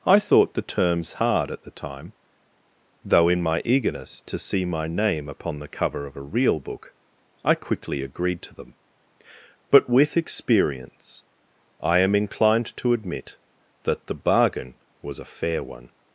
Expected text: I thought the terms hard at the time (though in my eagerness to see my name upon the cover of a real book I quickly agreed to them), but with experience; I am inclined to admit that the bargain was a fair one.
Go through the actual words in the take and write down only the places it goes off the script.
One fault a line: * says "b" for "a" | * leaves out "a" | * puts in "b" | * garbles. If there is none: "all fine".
all fine